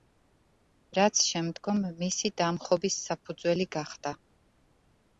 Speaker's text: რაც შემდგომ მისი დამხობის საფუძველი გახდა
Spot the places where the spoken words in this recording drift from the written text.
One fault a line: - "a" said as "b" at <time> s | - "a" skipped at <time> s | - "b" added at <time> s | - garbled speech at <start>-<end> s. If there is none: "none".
none